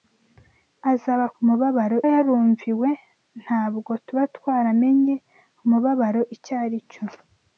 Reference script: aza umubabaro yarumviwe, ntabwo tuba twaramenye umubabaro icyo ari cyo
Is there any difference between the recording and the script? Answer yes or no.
no